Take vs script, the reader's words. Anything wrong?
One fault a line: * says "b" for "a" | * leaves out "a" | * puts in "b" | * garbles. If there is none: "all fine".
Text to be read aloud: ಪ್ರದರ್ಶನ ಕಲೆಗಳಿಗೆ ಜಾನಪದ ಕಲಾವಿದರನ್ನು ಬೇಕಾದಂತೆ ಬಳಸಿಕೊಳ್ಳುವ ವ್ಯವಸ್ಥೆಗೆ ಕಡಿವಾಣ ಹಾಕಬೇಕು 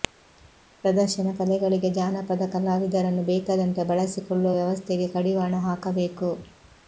all fine